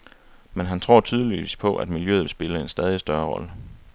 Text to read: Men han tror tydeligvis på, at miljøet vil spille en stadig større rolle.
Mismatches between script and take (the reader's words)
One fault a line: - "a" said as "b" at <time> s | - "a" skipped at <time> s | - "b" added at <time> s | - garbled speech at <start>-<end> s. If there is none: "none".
none